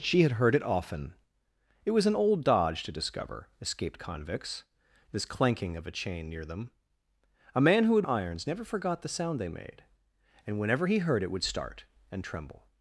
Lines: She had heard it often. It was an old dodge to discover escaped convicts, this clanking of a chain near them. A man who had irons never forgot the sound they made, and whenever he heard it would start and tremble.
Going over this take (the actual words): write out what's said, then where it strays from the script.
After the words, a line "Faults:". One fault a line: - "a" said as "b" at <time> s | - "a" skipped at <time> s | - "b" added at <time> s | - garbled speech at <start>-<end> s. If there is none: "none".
She had heard it often. It was an old dodge to discover escaped convicts, this clanking of a chain near them. A man who had irons never forgot the sound they made, and whenever he heard it would start and tremble.
Faults:
none